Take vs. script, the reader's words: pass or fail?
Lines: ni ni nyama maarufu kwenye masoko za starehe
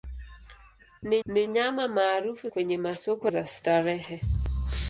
pass